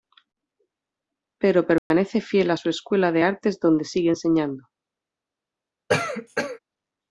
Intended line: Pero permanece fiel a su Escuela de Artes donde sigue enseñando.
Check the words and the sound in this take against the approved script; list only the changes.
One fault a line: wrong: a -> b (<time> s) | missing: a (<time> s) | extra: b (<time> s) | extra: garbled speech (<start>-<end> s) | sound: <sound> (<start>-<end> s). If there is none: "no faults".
sound: dropout (1.8-1.9 s)
sound: cough (5.9-6.6 s)